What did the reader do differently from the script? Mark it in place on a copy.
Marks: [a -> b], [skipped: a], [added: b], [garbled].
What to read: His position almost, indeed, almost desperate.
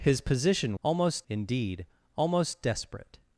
His position almost, indeed, almost desperate.